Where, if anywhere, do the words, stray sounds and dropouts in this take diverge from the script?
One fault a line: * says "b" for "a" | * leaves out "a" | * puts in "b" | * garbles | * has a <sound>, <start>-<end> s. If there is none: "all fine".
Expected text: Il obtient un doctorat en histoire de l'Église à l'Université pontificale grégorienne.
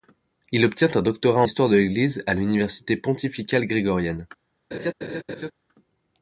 * leaves out "en"
* has a laugh, 4.7-5.5 s